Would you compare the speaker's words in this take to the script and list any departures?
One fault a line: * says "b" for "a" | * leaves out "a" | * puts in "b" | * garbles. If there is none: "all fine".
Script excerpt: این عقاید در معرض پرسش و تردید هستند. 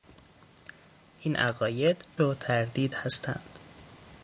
* leaves out "در معرض پرسش"